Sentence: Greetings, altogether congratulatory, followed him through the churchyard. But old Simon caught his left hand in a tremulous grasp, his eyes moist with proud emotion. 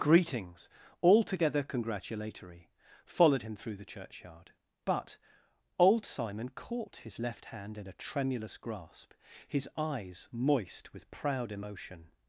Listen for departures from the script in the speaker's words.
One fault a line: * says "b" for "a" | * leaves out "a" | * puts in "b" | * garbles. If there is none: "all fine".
all fine